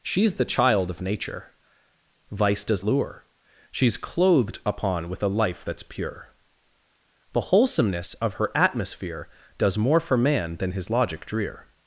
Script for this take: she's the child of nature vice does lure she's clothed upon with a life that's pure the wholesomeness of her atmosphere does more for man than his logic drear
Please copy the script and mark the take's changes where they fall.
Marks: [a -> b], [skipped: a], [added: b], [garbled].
she's the child of nature vice does lure she's clothed upon with a life that's pure the wholesomeness of her atmosphere does more for man than his logic drear